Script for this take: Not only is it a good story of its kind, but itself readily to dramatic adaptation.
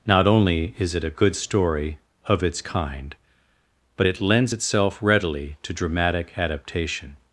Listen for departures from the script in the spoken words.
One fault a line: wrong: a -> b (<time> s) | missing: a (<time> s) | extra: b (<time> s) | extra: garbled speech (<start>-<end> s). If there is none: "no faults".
extra: it lends (4.0 s)